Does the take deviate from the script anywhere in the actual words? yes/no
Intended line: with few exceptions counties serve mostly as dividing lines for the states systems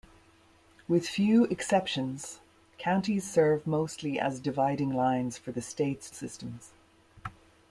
no